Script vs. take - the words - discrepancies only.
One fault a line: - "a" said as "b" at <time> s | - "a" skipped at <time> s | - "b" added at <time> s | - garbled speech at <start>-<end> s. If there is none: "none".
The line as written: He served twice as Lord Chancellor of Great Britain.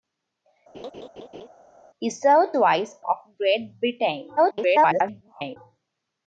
- "as Lord Chancellor" skipped at 3.0 s
- garbled speech at 4.4-5.6 s